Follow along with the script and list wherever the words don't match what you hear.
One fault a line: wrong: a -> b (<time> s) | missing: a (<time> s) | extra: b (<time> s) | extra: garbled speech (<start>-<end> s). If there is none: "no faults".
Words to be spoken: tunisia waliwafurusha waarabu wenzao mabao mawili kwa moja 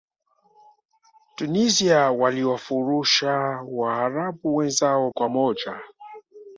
missing: mabao mawili (5.1 s)